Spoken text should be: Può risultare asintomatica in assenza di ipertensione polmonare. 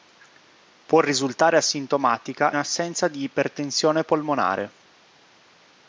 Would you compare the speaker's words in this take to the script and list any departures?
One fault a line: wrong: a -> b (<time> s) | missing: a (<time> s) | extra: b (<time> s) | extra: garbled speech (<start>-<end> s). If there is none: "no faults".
missing: in (2.5 s)